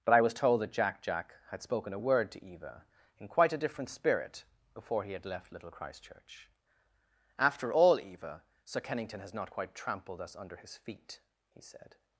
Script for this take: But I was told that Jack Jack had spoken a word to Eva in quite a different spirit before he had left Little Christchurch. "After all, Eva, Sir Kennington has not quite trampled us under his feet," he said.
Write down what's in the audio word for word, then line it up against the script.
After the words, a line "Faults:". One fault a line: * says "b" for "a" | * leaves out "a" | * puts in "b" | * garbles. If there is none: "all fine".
But I was told that Jack Jack had spoken a word to Eva in quite a different spirit before he had left Little Christchurch. "After all, Eva, Sir Kennington has not quite trampled us under his feet," he said.
Faults:
all fine